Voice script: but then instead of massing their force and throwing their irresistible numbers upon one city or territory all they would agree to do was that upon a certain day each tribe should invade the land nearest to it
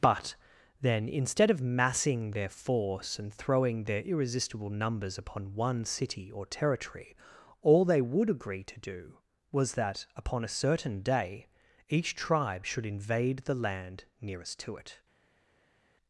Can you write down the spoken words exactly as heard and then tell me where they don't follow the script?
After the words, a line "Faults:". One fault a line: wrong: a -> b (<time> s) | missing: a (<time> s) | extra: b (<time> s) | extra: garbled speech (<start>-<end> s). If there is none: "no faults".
but then instead of massing their force and throwing their irresistible numbers upon one city or territory all they would agree to do was that upon a certain day each tribe should invade the land nearest to it
Faults:
no faults